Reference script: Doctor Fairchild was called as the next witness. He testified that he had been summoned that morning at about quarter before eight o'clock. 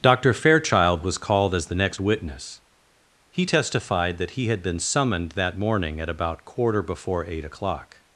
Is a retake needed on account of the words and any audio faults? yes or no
no